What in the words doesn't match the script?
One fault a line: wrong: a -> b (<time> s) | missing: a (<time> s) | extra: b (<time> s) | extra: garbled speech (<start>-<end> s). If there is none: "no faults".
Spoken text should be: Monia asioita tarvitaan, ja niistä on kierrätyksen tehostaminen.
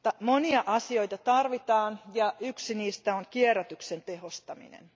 extra: yksi (2.4 s)